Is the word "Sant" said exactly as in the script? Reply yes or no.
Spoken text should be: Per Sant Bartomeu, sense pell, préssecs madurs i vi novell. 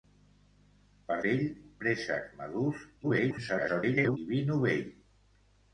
no